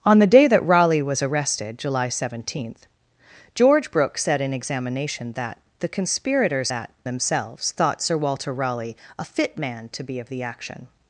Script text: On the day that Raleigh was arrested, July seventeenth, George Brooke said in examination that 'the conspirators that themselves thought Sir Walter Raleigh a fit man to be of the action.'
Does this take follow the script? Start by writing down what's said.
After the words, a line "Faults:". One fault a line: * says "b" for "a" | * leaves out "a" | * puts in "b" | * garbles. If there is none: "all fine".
On the day that Raleigh was arrested, July seventeenth, George Brooke said in examination that 'the conspirators that themselves thought Sir Walter Raleigh a fit man to be of the action.'
Faults:
all fine